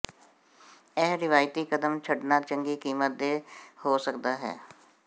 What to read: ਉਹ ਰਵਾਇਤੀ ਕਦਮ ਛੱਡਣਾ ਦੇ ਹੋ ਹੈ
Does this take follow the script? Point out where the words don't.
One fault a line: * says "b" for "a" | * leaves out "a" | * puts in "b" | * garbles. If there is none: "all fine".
* says "ਇਹ" for "ਉਹ"
* puts in "ਚੰਗੀ ਕੀਮਤ"
* puts in "ਸਕਦਾ"